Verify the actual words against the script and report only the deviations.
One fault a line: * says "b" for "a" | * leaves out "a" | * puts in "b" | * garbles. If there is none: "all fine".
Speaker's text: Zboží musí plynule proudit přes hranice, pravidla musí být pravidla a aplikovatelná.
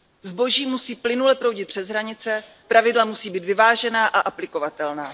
* says "vyvážená" for "pravidla"